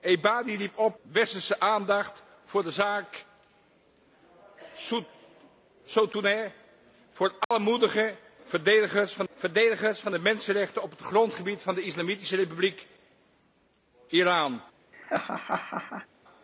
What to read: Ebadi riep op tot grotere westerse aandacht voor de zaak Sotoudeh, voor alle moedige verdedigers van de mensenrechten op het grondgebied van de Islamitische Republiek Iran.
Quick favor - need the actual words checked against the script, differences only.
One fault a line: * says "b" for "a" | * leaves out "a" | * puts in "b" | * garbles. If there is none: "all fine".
* leaves out "tot grotere"
* puts in "verdedigers van"